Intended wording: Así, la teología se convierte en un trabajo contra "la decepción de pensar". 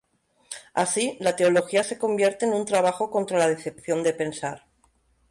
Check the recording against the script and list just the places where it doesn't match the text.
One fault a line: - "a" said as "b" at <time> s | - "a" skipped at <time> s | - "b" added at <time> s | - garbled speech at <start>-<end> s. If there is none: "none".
none